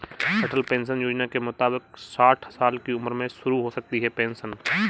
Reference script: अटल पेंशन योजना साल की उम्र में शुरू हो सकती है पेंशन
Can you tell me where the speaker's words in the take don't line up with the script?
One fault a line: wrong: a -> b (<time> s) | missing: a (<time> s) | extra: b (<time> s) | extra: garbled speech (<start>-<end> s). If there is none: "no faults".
extra: के मुताबिक साठ (1.3 s)